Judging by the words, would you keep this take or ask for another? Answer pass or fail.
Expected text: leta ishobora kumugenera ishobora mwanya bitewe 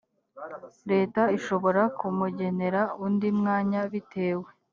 fail